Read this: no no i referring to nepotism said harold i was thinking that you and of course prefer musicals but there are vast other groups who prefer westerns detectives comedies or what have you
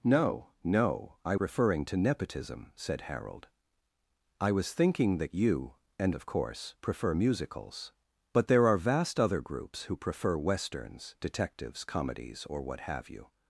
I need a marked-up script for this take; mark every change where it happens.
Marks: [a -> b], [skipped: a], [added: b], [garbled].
no no i referring to nepotism said harold i was thinking that you and of course prefer musicals but there are vast other groups who prefer westerns detectives comedies or what have you